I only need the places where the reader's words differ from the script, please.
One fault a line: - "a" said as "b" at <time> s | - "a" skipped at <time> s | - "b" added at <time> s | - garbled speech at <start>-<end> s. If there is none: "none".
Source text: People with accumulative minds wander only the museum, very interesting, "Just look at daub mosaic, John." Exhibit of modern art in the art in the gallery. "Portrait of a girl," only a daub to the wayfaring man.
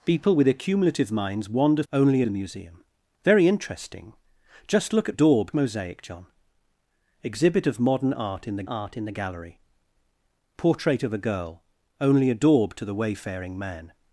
none